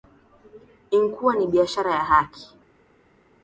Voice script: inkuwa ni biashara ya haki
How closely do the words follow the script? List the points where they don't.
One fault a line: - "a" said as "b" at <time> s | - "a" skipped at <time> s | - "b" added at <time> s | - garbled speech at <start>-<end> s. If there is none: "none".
none